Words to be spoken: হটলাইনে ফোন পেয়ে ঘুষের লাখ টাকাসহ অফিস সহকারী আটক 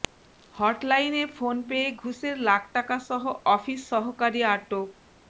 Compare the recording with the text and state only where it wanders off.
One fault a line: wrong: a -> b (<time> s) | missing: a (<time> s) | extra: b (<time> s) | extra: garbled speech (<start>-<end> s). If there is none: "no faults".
no faults